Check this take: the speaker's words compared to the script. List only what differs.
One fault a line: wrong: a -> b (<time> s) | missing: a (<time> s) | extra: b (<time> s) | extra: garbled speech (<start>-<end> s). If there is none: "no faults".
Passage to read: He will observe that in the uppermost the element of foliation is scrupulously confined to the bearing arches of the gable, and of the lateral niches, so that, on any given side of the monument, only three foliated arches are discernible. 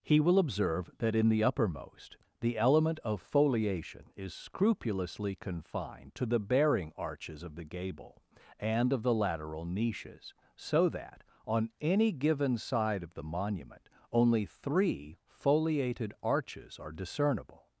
no faults